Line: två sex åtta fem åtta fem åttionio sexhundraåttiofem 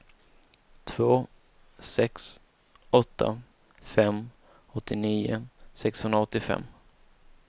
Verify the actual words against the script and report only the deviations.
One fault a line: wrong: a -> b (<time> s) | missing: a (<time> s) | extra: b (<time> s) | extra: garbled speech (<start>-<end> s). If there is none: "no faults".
missing: åtta fem (4.3 s)